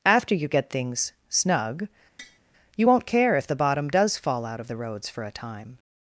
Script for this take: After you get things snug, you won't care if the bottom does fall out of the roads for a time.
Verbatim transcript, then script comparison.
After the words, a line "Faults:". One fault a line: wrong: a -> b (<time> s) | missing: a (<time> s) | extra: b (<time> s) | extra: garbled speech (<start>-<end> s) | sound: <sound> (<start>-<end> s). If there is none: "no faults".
After you get things snug, you won't care if the bottom does fall out of the roads for a time.
Faults:
sound: tap (2.2-2.4 s)